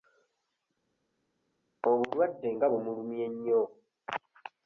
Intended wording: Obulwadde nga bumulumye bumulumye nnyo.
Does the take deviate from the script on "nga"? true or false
false